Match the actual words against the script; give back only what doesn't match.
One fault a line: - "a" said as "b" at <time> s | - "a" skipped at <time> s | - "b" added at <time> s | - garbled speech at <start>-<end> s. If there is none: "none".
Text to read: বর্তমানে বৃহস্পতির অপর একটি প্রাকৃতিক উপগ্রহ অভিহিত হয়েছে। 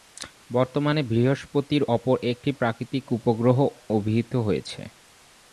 none